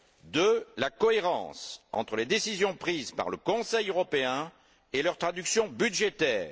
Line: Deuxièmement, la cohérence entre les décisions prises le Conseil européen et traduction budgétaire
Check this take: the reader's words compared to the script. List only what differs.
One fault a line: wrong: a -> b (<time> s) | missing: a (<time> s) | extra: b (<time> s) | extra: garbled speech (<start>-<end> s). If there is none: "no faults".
extra: par (3.1 s)
extra: leur (5.0 s)